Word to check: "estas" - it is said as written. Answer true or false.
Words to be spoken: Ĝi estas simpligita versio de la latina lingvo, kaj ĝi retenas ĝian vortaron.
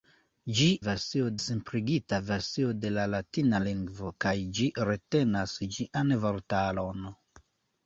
false